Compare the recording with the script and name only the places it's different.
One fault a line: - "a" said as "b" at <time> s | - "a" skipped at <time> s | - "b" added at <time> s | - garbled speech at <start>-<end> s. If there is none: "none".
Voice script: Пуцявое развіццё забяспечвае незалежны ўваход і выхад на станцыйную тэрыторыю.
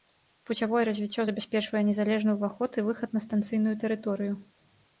none